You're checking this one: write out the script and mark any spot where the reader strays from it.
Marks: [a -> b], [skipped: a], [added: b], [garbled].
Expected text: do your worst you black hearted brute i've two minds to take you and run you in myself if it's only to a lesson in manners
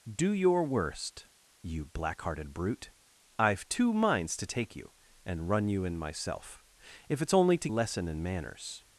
do your worst you black hearted brute i've two minds to take you and run you in myself if it's only to a lesson in manners